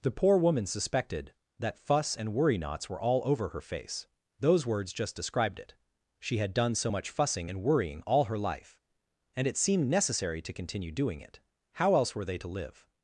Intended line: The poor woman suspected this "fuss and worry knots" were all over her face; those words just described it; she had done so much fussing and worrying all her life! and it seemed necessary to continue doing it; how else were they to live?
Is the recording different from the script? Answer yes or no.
yes